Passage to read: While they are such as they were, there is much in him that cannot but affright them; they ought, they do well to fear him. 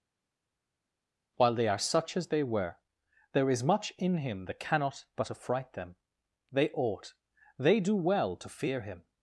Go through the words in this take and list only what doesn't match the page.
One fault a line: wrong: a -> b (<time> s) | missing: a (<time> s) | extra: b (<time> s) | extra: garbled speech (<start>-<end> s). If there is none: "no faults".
no faults